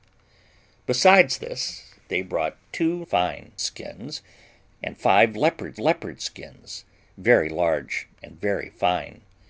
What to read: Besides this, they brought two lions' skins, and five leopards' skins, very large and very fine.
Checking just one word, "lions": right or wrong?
wrong